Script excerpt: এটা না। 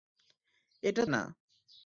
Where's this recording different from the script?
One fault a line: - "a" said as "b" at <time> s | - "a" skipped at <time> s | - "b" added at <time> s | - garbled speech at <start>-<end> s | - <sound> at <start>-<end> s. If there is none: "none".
none